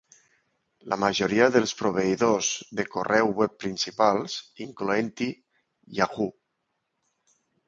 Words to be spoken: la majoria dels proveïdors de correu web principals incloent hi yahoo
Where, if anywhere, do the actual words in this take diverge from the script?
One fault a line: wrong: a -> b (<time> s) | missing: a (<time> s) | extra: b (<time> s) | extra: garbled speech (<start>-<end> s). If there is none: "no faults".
no faults